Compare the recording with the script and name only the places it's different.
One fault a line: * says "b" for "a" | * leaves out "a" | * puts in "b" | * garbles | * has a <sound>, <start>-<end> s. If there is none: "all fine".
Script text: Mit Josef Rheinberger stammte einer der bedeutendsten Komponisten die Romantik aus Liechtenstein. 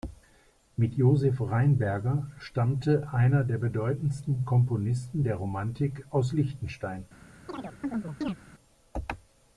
* says "der" for "die"
* has a chirp, 7.5-8.4 s